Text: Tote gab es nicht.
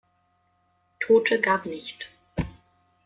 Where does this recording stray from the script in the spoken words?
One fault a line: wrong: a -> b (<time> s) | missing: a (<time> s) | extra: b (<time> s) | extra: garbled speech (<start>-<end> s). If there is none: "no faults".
missing: es (1.7 s)